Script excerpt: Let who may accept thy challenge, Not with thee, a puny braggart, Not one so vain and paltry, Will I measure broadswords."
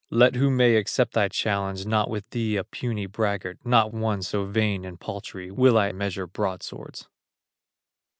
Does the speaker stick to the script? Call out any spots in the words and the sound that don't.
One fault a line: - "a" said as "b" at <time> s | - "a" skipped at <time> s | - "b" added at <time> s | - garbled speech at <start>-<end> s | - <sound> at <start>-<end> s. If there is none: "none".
none